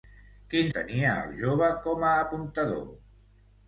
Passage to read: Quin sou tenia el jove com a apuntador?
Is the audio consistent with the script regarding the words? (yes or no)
no